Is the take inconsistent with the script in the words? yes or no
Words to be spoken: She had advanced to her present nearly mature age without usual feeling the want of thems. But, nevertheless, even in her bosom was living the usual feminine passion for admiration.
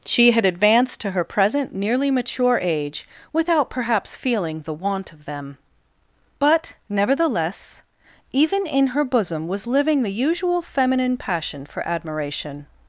yes